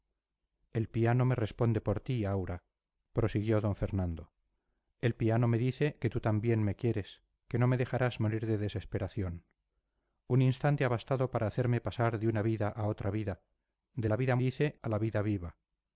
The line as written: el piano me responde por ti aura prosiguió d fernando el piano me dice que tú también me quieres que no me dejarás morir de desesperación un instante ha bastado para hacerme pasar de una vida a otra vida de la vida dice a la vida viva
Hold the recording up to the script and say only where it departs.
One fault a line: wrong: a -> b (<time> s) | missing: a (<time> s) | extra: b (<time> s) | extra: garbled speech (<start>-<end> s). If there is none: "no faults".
no faults